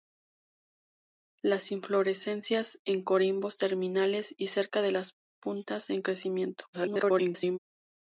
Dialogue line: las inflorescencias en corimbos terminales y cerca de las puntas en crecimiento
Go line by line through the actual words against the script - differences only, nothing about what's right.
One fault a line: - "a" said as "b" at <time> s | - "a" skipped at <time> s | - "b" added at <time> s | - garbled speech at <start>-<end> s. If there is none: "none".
- garbled speech at 6.7-7.6 s